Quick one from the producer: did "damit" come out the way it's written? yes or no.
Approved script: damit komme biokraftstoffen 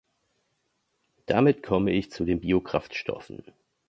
yes